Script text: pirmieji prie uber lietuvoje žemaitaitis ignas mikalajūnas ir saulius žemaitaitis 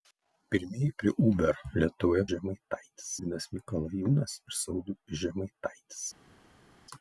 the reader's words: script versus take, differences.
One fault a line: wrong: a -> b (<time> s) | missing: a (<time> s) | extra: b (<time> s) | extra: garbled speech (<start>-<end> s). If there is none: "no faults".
no faults